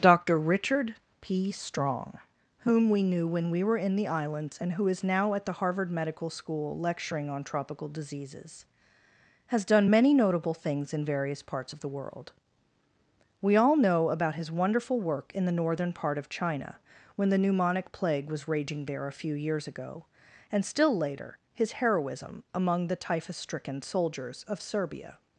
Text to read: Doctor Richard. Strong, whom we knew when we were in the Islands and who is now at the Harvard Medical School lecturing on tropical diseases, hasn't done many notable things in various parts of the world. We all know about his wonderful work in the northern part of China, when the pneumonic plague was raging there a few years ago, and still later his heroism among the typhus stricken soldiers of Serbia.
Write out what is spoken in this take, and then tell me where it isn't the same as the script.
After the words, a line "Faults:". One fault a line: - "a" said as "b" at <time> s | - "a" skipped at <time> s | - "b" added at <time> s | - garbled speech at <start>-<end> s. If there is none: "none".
Doctor Richard P. Strong, whom we knew when we were in the Islands and who is now at the Harvard Medical School lecturing on tropical diseases, has done many notable things in various parts of the world. We all know about his wonderful work in the northern part of China, when the pneumonic plague was raging there a few years ago, and still later his heroism among the typhus stricken soldiers of Serbia.
Faults:
- "P" added at 1.2 s
- "hasn't" said as "has" at 9.5 s